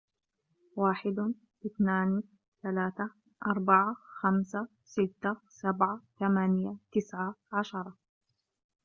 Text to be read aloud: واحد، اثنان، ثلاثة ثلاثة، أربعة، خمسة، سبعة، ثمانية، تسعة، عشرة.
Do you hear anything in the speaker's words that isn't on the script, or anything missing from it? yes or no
yes